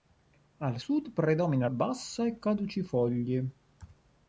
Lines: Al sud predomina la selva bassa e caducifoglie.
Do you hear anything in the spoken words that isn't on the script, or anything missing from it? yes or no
yes